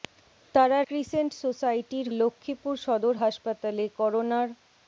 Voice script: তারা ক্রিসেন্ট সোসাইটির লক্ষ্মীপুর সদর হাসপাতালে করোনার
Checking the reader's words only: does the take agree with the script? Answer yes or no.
yes